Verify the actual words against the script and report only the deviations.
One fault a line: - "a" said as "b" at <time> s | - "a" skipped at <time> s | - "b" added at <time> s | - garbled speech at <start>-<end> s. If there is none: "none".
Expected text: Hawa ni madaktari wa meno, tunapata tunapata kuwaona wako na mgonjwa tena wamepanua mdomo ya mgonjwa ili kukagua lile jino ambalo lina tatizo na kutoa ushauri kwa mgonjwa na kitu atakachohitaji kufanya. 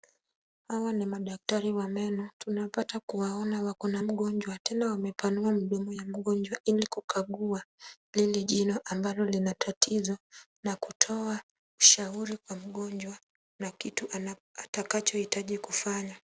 - "tunapata" skipped at 3.0 s